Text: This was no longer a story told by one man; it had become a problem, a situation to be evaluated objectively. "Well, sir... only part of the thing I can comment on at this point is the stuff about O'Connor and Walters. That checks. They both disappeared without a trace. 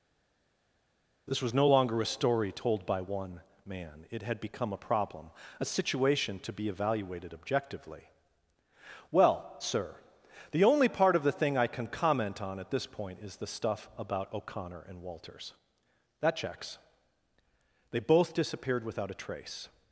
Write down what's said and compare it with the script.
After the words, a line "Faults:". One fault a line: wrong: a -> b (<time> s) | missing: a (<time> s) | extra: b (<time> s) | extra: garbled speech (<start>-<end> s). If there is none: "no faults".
This was no longer a story told by one man; it had become a problem, a situation to be evaluated objectively. "Well, sir... the only part of the thing I can comment on at this point is the stuff about O'Connor and Walters. That checks. They both disappeared without a trace.
Faults:
extra: the (10.5 s)